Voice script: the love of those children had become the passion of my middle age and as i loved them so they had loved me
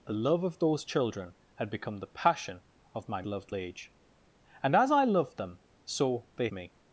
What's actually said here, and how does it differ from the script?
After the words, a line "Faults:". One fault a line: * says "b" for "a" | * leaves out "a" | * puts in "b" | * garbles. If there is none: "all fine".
the love of those children had become the passion of my loved age and as i loved them so they me
Faults:
* says "loved" for "middle"
* leaves out "had loved"